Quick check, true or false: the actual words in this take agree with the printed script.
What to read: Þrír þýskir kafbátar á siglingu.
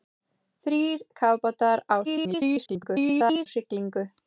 false